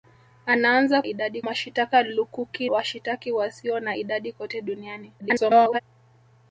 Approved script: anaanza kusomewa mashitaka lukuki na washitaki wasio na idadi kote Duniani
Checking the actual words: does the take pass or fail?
fail